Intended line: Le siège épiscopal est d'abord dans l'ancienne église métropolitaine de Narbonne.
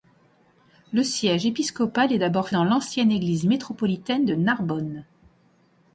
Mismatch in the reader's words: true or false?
false